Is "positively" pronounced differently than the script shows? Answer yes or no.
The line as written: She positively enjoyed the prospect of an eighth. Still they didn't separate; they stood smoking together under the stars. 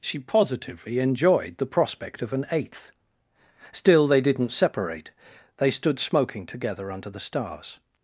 no